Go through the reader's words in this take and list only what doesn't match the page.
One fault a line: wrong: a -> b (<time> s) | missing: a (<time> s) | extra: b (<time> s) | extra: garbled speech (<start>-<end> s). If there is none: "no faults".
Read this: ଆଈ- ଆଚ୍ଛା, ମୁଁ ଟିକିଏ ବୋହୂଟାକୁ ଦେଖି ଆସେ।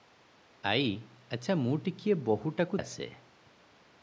missing: ଦେଖି (2.8 s)